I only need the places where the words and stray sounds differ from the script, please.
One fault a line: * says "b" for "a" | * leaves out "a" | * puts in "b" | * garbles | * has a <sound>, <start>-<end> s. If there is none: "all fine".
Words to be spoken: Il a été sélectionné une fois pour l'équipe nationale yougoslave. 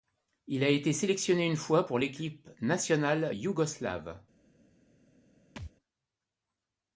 * has a thud, 5.6-5.7 s